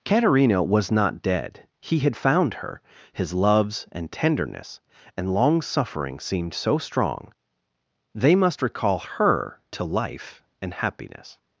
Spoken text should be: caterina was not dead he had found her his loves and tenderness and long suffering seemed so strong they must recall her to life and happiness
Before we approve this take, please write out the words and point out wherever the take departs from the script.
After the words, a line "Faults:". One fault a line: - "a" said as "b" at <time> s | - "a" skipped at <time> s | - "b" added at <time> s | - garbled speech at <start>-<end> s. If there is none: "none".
caterina was not dead he had found her his loves and tenderness and long suffering seemed so strong they must recall her to life and happiness
Faults:
none